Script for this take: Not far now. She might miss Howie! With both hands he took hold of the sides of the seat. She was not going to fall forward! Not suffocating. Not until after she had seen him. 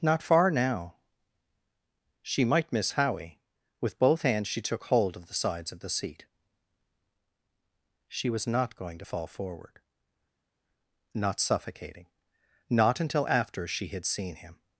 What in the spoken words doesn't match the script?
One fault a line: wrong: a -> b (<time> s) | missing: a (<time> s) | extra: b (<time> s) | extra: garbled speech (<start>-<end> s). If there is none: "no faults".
wrong: he -> she (4.5 s)